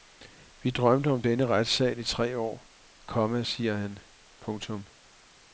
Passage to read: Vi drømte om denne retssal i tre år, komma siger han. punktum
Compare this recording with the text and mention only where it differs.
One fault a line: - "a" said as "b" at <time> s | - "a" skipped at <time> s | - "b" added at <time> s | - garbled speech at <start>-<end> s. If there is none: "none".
none